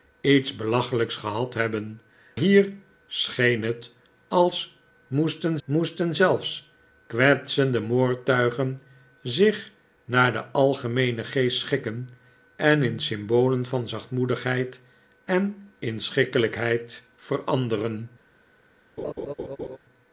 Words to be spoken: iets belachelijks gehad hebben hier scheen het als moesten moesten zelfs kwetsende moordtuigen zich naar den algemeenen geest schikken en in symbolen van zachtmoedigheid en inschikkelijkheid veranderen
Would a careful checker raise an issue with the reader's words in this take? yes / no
no